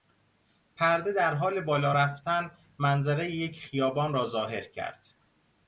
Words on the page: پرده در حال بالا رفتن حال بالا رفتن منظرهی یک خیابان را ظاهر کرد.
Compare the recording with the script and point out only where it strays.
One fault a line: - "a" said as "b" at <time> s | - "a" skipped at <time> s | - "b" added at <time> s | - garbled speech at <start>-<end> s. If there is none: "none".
- "حال بالا رفتن" skipped at 2.5 s